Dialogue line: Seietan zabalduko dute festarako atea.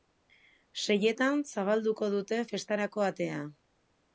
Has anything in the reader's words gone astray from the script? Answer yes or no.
no